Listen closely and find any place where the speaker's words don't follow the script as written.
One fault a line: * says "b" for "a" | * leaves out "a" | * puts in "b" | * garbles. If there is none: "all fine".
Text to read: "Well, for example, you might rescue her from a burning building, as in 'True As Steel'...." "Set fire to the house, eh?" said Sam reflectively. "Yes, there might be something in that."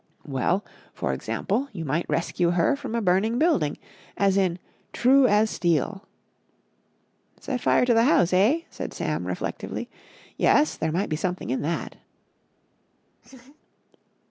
all fine